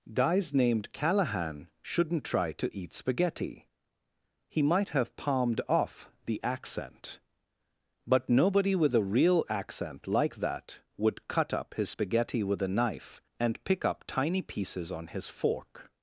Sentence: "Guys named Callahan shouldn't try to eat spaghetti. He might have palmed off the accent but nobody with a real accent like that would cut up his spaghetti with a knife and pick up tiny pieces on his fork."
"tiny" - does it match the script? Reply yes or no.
yes